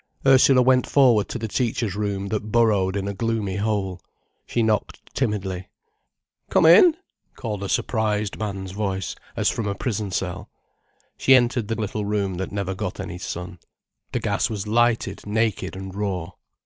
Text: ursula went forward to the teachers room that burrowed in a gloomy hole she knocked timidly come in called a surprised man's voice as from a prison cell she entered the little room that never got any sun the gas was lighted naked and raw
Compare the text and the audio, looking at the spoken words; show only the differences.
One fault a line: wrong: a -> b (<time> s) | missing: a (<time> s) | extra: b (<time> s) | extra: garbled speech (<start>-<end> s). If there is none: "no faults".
no faults